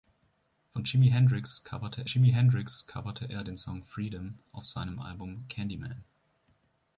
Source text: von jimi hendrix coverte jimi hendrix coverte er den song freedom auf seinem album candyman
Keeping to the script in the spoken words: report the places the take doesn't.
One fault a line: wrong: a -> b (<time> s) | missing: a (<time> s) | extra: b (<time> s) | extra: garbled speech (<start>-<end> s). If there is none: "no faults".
no faults